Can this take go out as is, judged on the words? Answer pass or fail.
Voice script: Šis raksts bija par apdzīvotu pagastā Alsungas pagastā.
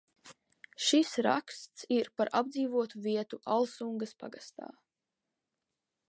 fail